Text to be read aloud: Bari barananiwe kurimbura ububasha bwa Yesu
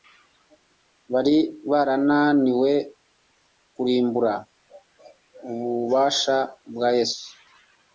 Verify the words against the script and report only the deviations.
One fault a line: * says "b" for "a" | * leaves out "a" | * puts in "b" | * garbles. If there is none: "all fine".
all fine